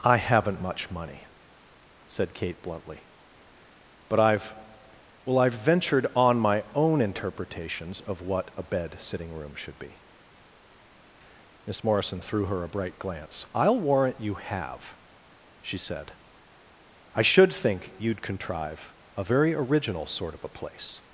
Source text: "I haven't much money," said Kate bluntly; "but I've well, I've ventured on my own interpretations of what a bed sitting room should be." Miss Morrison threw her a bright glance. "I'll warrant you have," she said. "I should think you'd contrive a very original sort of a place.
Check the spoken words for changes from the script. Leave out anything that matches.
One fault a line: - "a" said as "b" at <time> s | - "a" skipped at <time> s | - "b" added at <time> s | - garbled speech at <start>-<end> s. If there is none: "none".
none